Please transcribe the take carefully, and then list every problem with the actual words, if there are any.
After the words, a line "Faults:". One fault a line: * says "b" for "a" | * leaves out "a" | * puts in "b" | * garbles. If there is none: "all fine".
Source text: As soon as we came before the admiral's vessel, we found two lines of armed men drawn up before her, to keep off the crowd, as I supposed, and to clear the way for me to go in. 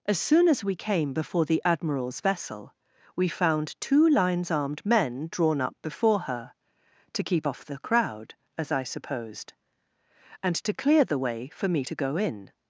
As soon as we came before the admiral's vessel, we found two lines armed men drawn up before her, to keep off the crowd, as I supposed, and to clear the way for me to go in.
Faults:
* leaves out "of"